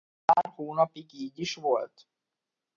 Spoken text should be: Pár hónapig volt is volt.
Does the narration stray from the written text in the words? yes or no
yes